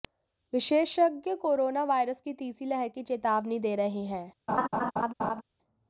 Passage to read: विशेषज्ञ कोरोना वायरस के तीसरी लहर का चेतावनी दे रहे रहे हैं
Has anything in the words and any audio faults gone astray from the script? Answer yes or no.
yes